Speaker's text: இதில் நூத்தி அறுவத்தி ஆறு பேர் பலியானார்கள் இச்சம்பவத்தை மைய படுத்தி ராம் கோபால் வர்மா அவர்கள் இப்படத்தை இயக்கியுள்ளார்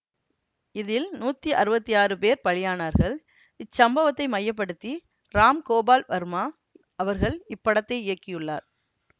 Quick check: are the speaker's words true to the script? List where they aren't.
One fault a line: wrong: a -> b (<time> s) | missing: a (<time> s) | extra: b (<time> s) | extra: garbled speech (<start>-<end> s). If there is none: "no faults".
no faults